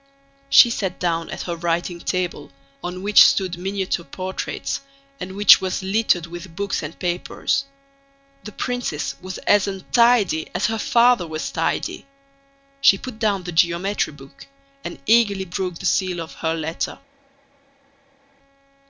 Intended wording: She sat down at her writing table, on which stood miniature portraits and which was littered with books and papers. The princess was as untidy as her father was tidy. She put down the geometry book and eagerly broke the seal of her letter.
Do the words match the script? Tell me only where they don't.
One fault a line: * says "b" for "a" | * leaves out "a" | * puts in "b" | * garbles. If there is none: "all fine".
all fine